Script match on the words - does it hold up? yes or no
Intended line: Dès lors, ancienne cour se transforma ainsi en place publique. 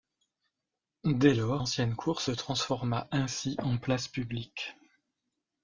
yes